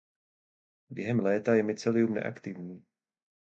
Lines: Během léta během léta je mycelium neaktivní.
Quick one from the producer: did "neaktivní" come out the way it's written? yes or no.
yes